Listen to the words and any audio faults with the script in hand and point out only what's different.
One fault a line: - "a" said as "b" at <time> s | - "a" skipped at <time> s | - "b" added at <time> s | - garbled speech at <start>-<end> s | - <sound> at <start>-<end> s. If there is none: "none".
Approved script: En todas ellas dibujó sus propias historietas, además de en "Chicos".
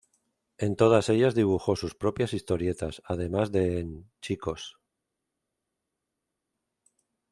none